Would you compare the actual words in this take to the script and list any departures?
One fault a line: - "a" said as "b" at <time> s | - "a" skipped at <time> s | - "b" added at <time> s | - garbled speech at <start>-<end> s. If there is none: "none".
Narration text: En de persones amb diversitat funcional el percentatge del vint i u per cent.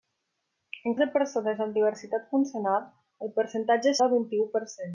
none